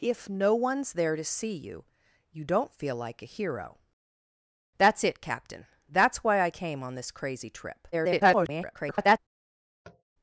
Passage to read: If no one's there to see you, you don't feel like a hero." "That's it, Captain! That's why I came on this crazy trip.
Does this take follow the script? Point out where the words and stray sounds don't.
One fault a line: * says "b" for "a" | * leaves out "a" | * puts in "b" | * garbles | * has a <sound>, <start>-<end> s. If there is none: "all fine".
* garbles
* has a tap, 9.8-10.0 s